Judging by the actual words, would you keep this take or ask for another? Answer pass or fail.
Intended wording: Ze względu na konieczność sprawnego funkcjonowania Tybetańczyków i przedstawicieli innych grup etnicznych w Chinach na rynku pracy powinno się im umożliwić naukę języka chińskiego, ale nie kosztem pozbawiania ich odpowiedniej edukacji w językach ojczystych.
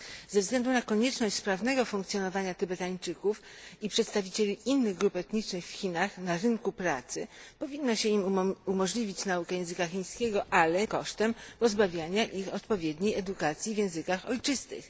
fail